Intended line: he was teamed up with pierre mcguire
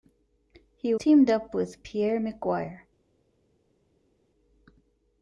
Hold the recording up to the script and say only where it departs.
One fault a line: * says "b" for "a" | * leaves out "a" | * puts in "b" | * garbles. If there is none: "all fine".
* leaves out "was"